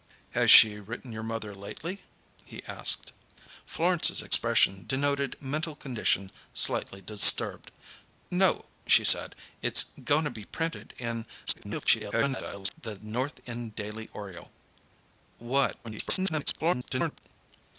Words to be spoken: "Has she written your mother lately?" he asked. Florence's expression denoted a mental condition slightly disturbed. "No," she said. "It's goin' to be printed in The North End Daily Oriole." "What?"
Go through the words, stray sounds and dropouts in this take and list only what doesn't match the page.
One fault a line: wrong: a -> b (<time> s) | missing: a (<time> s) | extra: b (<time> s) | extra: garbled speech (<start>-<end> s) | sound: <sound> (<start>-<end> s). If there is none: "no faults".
missing: a (5.4 s)
extra: garbled speech (11.5-12.7 s)
extra: garbled speech (15.8-17.2 s)